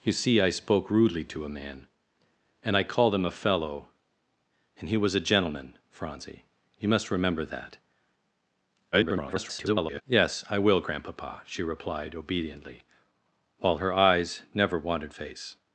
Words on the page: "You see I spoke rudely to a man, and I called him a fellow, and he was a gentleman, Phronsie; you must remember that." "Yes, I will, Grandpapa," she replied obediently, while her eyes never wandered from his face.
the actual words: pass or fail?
fail